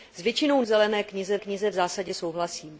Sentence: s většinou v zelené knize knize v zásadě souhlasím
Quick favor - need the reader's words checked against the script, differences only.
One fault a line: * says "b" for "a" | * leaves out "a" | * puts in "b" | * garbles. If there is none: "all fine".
all fine